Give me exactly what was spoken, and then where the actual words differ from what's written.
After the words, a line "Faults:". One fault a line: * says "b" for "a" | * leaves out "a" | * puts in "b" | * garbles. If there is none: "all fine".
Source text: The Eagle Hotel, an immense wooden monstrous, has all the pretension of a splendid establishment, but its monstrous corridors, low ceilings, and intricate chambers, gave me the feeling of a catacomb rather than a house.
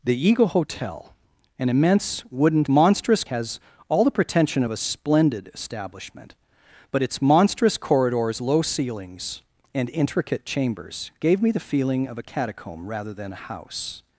The Eagle Hotel, an immense wooden monstrous, has all the pretension of a splendid establishment, but its monstrous corridors, low ceilings, and intricate chambers, gave me the feeling of a catacomb rather than a house.
Faults:
all fine